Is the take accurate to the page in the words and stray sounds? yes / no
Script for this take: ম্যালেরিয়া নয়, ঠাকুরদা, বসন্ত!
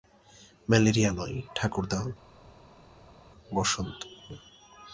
yes